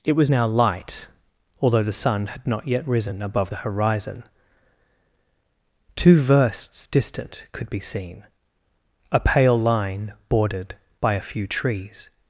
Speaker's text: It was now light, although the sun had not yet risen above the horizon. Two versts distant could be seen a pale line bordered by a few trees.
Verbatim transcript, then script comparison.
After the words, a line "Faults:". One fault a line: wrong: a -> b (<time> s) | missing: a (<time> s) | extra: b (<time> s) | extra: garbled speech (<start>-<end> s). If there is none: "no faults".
It was now light, although the sun had not yet risen above the horizon. Two versts distant could be seen a pale line bordered by a few trees.
Faults:
no faults